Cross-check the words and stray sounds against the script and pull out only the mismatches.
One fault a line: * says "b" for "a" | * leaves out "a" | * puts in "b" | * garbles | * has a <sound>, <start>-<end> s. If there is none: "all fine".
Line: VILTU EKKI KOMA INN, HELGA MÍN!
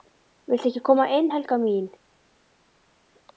all fine